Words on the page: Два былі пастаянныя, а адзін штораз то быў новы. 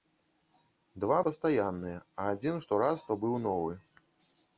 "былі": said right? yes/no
no